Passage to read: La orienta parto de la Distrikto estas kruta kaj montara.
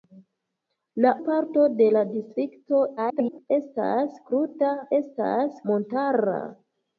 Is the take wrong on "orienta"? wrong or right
wrong